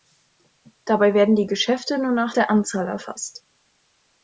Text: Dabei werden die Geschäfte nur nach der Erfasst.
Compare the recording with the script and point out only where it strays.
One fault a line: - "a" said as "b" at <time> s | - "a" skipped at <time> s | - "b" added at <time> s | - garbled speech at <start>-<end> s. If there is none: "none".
- "Anzahl" added at 2.5 s